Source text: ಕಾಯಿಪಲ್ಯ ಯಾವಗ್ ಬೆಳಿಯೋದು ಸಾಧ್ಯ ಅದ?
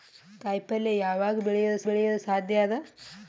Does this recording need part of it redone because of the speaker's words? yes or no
yes